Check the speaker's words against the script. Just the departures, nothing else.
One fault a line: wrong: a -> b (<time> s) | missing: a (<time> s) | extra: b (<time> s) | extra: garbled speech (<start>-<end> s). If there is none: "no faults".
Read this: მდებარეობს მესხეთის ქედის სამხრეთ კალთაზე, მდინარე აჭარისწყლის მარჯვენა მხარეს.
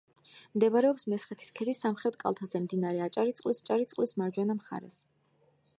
extra: აჭარისწყლის (3.6 s)